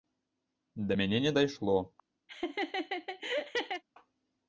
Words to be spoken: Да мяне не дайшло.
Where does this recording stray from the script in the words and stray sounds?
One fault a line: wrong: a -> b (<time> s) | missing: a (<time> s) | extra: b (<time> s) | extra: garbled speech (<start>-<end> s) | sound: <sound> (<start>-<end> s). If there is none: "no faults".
sound: laugh (2.3-3.8 s)